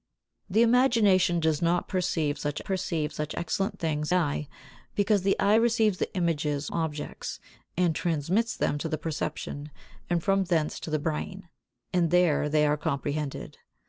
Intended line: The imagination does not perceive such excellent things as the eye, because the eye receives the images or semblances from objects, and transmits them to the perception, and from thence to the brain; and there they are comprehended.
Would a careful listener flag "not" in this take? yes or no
no